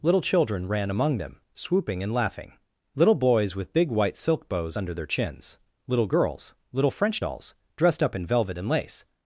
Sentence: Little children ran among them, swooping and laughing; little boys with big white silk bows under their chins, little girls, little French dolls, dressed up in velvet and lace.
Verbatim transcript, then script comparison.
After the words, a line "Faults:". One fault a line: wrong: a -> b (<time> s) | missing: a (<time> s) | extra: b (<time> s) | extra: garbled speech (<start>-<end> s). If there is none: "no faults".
Little children ran among them, swooping and laughing; little boys with big white silk bows under their chins, little girls, little French dolls, dressed up in velvet and lace.
Faults:
no faults